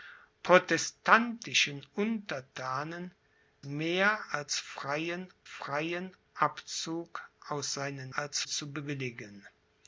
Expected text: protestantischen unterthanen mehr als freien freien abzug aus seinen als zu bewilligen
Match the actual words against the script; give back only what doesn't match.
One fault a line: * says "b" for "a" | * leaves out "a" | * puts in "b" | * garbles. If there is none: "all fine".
all fine